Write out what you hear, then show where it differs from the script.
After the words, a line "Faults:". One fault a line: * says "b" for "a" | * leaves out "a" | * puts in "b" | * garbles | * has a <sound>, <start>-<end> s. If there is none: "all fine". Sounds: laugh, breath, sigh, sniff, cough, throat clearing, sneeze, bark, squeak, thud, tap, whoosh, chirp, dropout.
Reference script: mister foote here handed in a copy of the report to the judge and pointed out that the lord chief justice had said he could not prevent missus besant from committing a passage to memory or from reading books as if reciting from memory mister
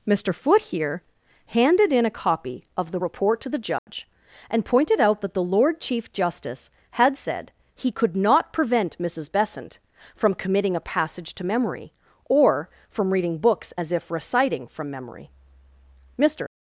mister foote here handed in a copy of the report to the judge and pointed out that the lord chief justice had said he could not prevent missus besant from committing a passage to memory or from reading books as if reciting from memory mister
Faults:
* has a dropout, 3.8-3.9 s